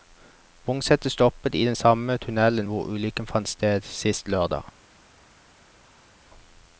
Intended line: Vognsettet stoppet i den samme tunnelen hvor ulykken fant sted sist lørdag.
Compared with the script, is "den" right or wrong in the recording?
right